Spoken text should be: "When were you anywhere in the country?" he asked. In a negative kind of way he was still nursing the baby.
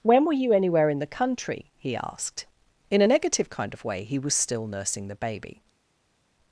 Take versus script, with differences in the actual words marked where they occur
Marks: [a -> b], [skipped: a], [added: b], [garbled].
"When were you anywhere in the country?" he asked. In a negative kind of way he was still nursing the baby.